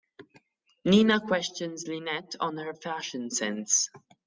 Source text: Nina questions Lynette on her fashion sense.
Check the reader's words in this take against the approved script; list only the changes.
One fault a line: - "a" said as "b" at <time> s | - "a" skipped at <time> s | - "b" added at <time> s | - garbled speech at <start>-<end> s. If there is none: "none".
none